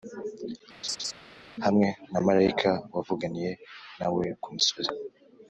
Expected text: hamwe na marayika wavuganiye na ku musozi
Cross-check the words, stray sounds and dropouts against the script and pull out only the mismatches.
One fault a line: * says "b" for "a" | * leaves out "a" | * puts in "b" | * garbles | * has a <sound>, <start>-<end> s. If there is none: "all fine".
* has a laugh, 0.8-1.1 s
* puts in "we"